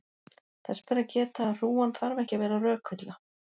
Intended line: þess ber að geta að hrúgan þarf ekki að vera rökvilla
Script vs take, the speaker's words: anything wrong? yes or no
no